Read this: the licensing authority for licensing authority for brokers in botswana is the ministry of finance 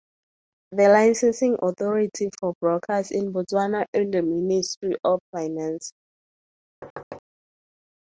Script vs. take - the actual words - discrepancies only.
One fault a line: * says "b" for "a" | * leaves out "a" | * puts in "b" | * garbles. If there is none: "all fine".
* leaves out "licensing authority for"